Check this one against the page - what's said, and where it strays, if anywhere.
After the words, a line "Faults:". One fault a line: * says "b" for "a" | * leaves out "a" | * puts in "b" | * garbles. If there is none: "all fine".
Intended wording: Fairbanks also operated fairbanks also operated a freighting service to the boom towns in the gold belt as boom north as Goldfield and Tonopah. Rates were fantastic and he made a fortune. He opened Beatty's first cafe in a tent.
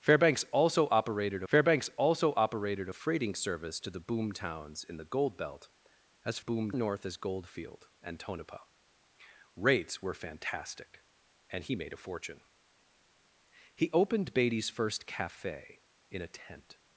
Fairbanks also operated fairbanks also operated a freighting service to the boom towns in the gold belt as boom north as Goldfield and Tonopah. Rates were fantastic and he made a fortune. He opened Beatty's first cafe in a tent.
Faults:
all fine